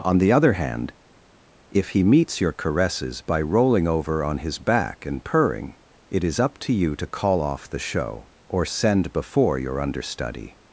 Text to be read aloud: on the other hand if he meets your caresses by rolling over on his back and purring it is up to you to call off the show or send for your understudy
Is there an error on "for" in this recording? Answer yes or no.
yes